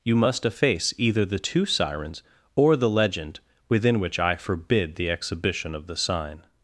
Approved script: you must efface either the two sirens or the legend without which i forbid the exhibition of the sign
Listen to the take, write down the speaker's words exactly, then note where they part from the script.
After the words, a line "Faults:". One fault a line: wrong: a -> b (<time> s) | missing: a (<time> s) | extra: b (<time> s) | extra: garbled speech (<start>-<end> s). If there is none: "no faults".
you must efface either the two sirens or the legend within which i forbid the exhibition of the sign
Faults:
wrong: without -> within (3.7 s)